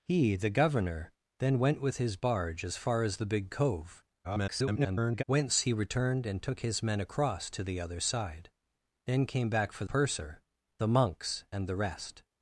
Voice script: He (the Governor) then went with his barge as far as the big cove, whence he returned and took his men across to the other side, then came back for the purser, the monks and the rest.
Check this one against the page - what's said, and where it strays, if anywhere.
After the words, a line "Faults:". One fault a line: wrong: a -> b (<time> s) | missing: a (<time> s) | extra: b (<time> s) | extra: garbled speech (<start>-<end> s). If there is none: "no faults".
He (the Governor) then went with his barge as far as the big cove, [garbled] whence he returned and took his men across to the other side, then came back for purser, the monks and the rest.
Faults:
extra: garbled speech (4.2-5.2 s)
missing: the (9.8 s)